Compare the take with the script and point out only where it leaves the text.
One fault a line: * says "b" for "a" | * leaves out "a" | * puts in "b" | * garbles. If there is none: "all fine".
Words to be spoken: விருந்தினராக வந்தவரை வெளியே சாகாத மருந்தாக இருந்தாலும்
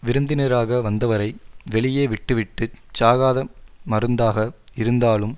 * puts in "விட்டுவிட்டுச்"